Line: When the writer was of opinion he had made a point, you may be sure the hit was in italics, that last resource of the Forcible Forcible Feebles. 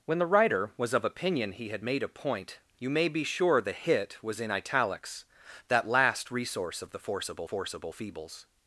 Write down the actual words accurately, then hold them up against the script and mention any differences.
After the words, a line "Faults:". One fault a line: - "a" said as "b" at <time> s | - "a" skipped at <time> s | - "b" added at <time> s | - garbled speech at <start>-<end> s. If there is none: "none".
When the writer was of opinion he had made a point, you may be sure the hit was in italics, that last resource of the Forcible Forcible Feebles.
Faults:
none